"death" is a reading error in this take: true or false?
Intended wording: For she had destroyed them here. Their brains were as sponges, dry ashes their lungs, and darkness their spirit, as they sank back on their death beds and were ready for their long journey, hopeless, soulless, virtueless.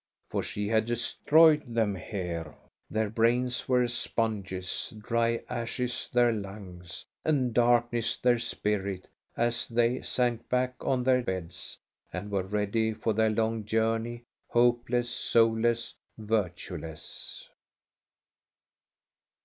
true